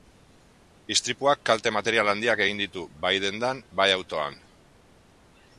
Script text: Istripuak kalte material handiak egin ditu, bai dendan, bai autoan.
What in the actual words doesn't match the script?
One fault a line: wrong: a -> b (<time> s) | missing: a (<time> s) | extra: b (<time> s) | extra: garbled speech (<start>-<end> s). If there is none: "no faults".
no faults